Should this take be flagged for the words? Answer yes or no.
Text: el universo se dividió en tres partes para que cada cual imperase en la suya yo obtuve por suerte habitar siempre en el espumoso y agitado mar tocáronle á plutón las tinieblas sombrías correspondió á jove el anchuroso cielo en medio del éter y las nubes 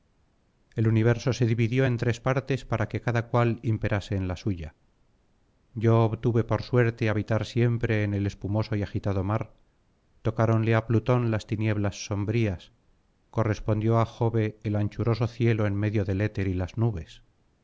no